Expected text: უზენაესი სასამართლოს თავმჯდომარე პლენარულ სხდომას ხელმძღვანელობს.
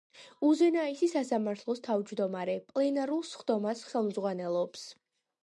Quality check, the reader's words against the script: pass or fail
pass